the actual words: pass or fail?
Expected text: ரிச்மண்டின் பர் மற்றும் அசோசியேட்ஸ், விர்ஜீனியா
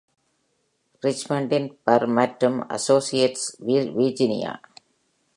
pass